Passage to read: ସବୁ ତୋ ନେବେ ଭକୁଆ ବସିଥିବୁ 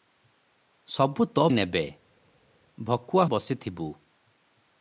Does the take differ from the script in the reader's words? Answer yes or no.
no